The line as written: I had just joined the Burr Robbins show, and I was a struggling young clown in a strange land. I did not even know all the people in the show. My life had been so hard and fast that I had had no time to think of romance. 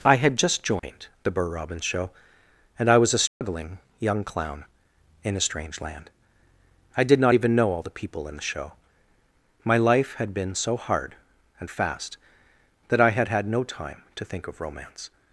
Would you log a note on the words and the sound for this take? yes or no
yes